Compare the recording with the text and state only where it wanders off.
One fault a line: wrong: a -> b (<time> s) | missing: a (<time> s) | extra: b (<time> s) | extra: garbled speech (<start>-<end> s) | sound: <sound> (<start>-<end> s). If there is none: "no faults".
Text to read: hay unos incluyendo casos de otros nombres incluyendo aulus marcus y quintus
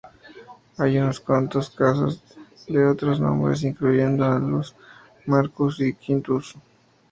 wrong: incluyendo -> cuantos (1.2 s)